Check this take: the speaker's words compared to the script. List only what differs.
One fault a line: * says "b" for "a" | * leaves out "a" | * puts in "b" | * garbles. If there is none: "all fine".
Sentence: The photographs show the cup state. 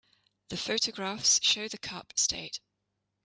all fine